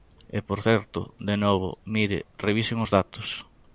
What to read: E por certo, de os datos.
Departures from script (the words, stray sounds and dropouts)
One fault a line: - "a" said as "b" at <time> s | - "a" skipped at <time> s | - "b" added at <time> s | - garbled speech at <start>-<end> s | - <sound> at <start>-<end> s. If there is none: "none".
- "novo mire revisen" added at 1.4 s